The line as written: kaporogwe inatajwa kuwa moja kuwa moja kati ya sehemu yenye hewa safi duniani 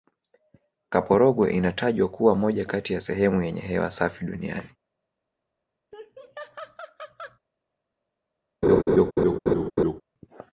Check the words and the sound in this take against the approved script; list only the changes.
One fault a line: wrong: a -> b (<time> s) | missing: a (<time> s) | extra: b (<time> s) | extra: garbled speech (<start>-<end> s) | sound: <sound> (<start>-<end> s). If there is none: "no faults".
missing: kuwa moja (2.6 s)
sound: laugh (5.9-7.4 s)
sound: laugh (8.6-10.0 s)